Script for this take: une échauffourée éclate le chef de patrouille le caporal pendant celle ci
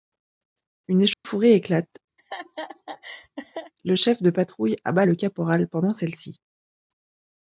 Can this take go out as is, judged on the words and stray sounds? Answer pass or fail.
fail